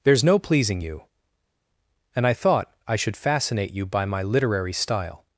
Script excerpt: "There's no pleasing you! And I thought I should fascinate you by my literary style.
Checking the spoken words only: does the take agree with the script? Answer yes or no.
yes